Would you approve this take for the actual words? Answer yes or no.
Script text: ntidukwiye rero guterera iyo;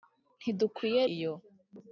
no